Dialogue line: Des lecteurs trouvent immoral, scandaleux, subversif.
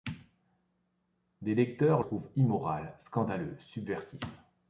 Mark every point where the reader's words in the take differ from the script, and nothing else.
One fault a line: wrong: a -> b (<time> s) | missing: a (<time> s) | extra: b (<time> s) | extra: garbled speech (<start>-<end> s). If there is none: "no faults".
no faults